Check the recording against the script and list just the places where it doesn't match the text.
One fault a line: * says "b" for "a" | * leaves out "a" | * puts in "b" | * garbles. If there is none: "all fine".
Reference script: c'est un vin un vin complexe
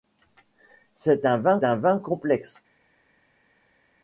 all fine